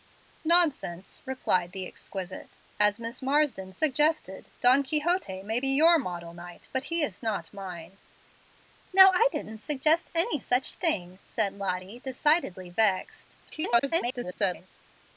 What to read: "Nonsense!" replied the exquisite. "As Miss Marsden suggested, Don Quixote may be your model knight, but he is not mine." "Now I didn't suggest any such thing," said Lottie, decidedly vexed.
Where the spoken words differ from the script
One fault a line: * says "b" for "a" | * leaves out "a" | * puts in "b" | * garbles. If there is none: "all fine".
* garbles